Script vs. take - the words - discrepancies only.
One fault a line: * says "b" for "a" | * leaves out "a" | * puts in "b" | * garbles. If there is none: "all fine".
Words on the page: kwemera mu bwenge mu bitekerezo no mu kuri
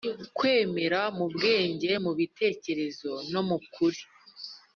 all fine